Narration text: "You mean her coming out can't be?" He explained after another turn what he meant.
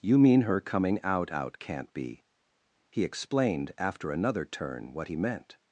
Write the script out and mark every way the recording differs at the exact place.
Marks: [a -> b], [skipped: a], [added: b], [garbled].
"You mean her coming out [added: out] can't be?" He explained after another turn what he meant.